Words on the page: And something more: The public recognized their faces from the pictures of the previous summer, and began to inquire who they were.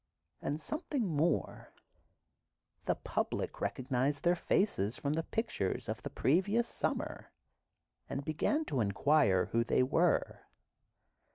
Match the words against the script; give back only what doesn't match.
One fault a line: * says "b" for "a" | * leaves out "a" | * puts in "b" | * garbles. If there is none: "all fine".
all fine